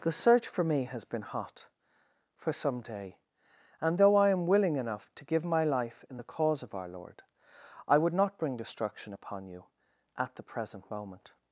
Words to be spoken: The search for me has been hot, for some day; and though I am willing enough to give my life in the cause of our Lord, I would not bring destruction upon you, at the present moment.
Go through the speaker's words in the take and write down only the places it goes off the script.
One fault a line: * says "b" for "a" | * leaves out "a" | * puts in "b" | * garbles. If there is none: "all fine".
all fine